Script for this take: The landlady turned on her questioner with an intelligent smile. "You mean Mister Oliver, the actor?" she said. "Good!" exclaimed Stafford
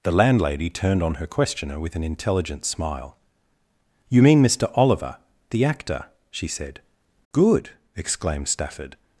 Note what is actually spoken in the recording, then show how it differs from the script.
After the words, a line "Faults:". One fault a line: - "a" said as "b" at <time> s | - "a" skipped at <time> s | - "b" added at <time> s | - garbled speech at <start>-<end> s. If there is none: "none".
The landlady turned on her questioner with an intelligent smile. "You mean Mister Oliver, the actor?" she said. "Good!" exclaimed Stafford
Faults:
none